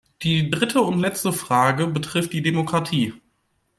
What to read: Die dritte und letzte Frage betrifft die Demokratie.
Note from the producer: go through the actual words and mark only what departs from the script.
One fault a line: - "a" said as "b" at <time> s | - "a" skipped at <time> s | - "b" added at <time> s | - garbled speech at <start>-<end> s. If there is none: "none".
none